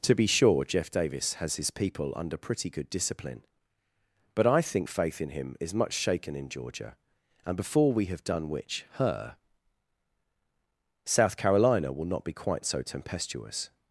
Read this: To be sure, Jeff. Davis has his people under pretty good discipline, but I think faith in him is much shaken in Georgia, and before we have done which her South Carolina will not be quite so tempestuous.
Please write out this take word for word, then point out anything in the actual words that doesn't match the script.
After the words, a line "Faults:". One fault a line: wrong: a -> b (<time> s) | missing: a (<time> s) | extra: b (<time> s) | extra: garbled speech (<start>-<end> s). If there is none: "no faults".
To be sure, Jeff. Davis has his people under pretty good discipline, but I think faith in him is much shaken in Georgia, and before we have done which her South Carolina will not be quite so tempestuous.
Faults:
no faults